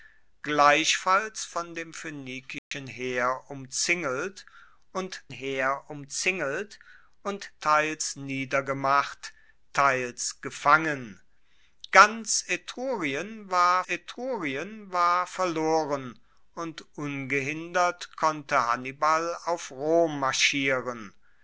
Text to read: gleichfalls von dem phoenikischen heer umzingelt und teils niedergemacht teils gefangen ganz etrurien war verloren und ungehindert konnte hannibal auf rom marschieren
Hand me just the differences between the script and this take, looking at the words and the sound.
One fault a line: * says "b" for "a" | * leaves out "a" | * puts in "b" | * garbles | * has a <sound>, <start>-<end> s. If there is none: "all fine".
* has a dropout, 2.6-2.7 s
* puts in "heer umzingelt und"
* puts in "etrurien war"